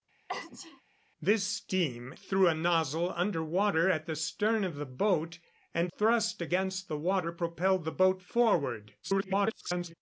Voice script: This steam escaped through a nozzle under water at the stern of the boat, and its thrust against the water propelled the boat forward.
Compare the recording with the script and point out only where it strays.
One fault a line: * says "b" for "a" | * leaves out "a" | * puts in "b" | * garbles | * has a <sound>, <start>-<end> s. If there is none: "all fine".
* has a sneeze, 0.3-0.8 s
* leaves out "escaped"
* leaves out "its"
* garbles